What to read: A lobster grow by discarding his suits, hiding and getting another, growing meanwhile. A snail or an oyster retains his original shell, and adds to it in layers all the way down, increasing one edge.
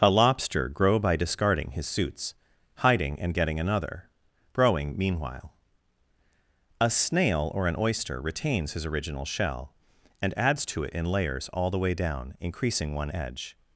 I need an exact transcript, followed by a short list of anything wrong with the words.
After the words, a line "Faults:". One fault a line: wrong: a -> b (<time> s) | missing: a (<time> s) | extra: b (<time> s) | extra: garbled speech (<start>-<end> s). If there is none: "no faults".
A lobster grow by discarding his suits, hiding and getting another, growing meanwhile. A snail or an oyster retains his original shell, and adds to it in layers all the way down, increasing one edge.
Faults:
no faults